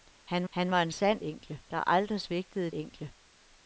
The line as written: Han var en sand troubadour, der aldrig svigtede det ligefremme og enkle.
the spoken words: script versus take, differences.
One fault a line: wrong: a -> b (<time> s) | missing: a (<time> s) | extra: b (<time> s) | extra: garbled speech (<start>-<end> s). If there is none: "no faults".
extra: han (0.5 s)
wrong: troubadour -> enkle (1.2 s)
missing: det ligefremme og (2.7 s)